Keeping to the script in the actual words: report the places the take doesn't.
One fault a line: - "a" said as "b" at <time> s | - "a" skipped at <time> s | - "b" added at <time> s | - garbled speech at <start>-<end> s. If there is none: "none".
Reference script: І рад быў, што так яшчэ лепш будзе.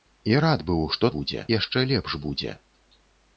- "так" said as "будзе" at 1.2 s